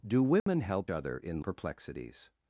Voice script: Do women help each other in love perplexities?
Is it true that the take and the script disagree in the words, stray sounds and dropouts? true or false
true